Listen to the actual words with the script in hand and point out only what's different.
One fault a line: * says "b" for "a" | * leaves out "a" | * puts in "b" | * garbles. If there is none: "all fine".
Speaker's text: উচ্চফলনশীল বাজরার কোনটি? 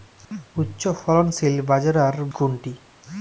all fine